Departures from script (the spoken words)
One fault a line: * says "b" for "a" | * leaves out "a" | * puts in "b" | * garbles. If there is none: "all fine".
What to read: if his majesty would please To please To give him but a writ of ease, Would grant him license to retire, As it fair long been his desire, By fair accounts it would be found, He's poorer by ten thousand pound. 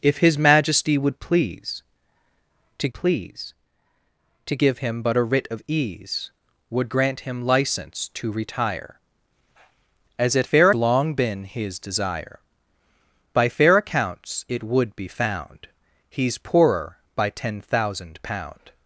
all fine